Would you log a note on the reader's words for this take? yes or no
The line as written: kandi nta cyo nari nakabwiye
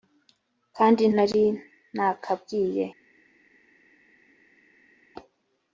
yes